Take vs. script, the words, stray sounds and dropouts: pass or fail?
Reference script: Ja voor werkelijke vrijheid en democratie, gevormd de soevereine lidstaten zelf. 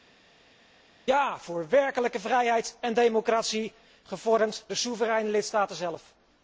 pass